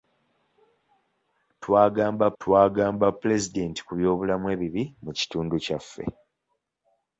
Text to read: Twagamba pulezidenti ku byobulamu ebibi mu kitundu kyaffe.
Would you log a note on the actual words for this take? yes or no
yes